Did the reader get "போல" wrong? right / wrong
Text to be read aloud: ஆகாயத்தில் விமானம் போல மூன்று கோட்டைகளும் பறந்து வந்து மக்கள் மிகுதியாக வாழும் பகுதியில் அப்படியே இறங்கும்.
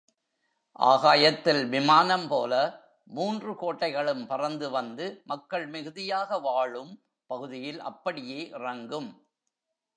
right